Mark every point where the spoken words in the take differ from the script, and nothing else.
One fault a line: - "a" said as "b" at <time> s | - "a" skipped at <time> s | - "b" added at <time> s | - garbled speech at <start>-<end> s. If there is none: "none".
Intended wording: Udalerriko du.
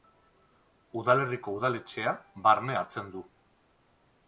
- "udaletxea barne hartzen" added at 1.6 s